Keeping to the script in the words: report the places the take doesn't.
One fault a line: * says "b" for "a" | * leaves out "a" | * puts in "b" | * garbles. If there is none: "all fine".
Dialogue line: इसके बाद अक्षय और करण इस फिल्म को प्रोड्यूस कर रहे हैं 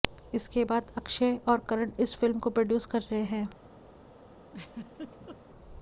all fine